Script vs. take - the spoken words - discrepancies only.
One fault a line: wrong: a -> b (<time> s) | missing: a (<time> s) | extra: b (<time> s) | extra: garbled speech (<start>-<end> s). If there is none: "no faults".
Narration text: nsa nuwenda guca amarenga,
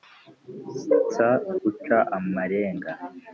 missing: nuwenda (1.3 s)